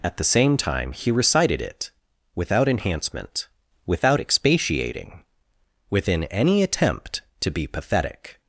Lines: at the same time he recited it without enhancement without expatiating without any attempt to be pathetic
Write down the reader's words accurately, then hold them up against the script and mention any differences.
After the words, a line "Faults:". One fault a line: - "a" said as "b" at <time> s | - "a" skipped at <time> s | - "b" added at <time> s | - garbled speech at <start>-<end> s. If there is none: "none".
at the same time he recited it without enhancement without expatiating within any attempt to be pathetic
Faults:
- "without" said as "within" at 5.9 s